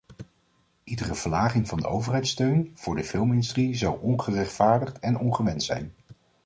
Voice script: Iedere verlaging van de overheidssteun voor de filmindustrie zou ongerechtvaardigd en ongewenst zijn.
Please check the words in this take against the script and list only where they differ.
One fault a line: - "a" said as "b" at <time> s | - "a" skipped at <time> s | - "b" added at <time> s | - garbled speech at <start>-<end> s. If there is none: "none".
none